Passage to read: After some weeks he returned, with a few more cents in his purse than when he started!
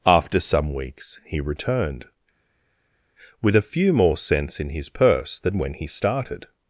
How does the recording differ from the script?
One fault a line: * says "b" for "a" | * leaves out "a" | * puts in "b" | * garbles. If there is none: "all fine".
all fine